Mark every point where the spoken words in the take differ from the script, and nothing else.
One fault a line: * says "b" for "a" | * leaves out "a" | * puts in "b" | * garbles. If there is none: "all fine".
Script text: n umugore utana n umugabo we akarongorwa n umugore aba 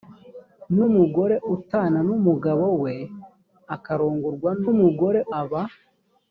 all fine